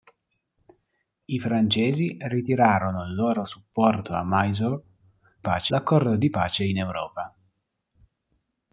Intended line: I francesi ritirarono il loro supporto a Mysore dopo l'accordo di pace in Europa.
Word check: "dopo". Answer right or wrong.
wrong